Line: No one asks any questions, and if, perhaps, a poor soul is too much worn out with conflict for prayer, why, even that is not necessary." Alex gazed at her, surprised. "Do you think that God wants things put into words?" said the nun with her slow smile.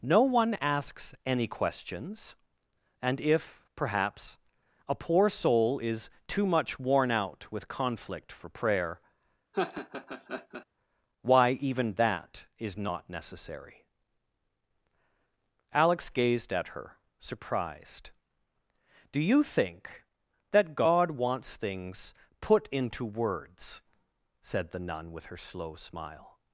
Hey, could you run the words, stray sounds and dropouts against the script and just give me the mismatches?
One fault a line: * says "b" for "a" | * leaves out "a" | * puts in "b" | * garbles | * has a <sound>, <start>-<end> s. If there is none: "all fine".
* has a laugh, 9.5-10.7 s